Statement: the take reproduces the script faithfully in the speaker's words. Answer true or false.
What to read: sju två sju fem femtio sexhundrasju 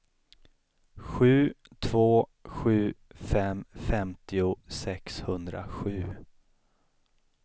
true